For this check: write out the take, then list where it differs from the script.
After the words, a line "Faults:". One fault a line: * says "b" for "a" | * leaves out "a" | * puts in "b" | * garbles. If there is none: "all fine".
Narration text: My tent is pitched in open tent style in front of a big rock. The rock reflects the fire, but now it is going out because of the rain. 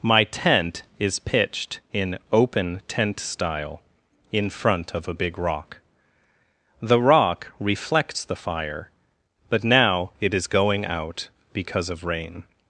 My tent is pitched in open tent style in front of a big rock. The rock reflects the fire, but now it is going out because of rain.
Faults:
* leaves out "the"